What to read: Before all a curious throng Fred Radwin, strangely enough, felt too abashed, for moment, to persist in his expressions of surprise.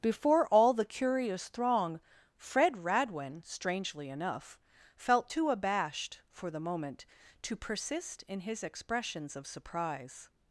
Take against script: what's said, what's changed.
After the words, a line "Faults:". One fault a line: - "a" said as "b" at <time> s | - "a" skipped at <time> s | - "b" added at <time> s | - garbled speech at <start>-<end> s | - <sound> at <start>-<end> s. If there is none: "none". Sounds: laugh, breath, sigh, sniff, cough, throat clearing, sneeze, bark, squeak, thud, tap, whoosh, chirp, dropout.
Before all the curious throng Fred Radwin, strangely enough, felt too abashed, for the moment, to persist in his expressions of surprise.
Faults:
- "a" said as "the" at 0.7 s
- "the" added at 6.5 s